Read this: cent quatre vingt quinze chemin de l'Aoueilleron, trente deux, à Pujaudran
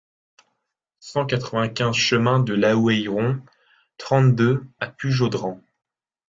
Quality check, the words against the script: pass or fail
pass